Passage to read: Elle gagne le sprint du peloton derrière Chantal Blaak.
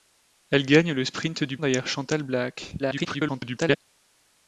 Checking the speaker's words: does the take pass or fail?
fail